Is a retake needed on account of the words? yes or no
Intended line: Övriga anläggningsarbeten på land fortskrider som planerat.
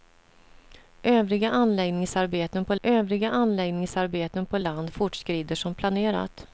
yes